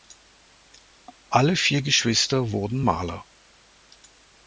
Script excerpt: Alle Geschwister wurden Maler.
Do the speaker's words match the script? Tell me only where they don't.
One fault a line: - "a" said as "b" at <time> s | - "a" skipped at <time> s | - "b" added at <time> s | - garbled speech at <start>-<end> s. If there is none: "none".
- "vier" added at 1.6 s